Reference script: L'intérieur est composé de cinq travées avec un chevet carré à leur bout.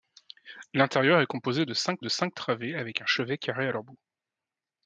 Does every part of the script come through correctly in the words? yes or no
no